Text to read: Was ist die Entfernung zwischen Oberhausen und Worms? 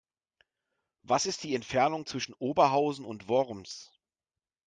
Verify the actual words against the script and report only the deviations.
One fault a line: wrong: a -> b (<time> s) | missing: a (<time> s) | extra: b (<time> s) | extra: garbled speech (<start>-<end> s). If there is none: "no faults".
no faults